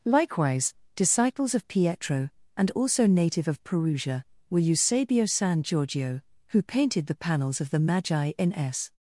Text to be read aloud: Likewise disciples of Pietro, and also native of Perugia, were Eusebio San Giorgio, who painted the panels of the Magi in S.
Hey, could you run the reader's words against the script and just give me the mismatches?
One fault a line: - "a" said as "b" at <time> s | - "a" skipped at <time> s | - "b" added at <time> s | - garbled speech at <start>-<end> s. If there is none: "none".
none